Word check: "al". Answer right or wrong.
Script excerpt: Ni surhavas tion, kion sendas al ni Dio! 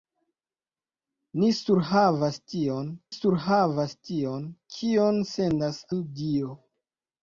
wrong